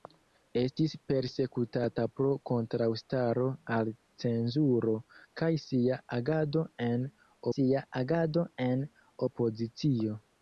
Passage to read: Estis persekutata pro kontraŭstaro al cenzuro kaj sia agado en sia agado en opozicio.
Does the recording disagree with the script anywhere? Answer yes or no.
no